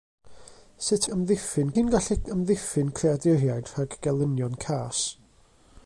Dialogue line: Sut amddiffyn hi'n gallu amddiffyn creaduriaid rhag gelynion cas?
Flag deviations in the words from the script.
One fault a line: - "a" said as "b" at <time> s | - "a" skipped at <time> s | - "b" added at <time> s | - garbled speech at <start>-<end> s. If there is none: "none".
none